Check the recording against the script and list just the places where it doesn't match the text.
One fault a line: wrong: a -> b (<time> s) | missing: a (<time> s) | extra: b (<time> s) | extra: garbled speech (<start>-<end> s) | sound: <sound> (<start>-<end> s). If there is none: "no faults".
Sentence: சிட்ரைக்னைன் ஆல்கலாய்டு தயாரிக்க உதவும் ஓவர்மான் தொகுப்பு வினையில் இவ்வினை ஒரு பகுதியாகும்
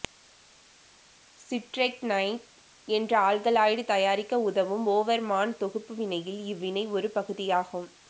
extra: என்ற (2.9 s)